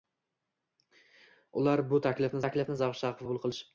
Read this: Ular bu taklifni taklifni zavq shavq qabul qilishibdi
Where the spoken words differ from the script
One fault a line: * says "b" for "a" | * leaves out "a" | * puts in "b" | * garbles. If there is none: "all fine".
all fine